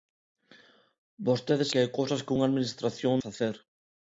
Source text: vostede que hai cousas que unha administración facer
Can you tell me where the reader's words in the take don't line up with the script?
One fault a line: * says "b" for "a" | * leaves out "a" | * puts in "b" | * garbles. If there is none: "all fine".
all fine